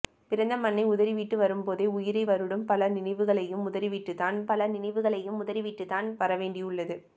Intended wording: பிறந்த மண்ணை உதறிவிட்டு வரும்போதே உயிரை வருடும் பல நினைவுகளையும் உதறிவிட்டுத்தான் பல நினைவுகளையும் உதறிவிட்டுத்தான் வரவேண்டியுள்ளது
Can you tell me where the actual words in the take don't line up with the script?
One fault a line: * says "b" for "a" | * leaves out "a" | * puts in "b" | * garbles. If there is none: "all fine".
all fine